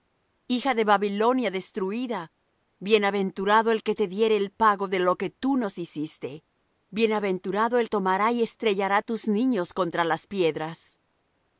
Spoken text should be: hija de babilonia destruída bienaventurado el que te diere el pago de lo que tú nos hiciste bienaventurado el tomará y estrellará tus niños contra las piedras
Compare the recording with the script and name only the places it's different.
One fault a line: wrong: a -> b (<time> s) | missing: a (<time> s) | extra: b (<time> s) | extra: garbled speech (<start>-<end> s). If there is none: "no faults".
no faults